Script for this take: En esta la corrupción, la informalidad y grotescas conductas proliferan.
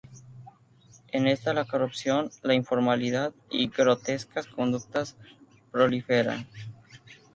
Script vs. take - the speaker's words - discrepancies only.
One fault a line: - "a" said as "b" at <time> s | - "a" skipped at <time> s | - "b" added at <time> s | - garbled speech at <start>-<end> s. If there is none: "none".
none